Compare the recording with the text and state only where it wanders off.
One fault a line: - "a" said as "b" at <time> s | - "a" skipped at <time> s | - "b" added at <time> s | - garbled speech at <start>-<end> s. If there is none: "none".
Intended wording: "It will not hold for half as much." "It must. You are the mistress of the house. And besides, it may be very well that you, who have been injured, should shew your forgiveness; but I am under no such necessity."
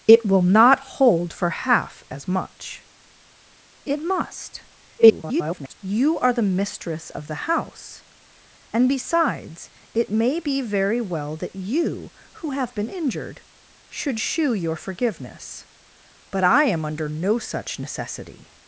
- garbled speech at 5.0-5.7 s